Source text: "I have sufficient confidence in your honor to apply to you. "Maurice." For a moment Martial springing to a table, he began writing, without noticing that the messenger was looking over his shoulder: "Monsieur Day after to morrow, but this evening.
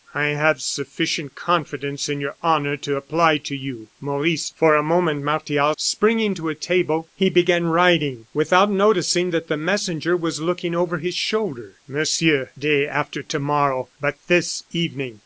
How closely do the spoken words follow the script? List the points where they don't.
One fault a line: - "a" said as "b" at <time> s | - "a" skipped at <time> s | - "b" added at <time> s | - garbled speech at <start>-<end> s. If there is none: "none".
none